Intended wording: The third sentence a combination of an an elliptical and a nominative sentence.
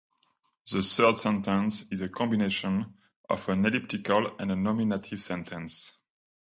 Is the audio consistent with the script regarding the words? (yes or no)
no